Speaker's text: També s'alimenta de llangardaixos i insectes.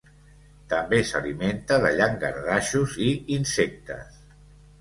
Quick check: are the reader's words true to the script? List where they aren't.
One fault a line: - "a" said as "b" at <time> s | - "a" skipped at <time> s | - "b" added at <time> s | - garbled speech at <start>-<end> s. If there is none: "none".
none